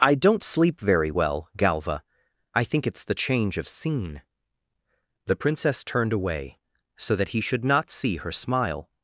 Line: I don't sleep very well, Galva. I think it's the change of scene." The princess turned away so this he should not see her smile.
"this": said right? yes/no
no